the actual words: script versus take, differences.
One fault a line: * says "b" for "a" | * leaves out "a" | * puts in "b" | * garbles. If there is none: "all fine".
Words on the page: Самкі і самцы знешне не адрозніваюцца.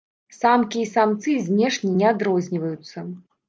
all fine